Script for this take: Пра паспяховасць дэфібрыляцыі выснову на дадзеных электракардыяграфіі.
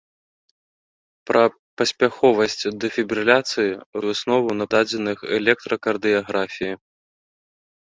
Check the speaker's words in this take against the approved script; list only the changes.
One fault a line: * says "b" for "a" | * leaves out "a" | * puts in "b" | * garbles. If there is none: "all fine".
all fine